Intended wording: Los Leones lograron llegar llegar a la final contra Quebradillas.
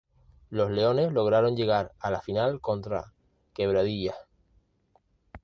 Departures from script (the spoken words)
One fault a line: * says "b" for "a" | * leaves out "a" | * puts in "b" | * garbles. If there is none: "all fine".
* leaves out "llegar"